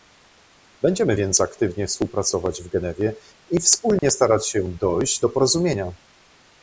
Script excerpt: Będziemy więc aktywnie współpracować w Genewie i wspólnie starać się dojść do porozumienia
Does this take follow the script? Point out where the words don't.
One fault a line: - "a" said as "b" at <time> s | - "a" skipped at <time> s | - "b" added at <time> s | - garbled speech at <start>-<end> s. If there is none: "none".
none